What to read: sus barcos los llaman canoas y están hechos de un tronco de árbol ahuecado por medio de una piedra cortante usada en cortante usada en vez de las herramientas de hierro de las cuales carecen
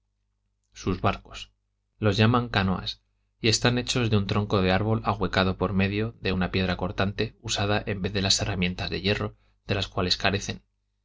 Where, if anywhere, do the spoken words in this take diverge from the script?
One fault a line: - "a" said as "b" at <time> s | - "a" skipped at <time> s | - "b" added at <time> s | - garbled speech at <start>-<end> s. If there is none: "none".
- "cortante usada en" skipped at 8.0 s